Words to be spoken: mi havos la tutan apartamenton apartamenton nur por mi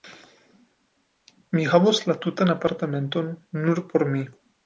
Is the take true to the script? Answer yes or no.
no